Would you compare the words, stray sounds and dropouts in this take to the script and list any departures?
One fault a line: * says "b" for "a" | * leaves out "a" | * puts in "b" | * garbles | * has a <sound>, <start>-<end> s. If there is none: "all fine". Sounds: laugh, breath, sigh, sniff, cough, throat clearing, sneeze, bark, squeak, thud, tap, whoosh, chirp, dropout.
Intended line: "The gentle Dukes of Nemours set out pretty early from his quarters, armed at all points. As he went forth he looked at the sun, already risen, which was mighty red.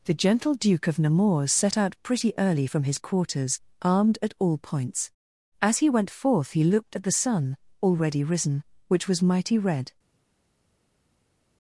* says "Duke" for "Dukes"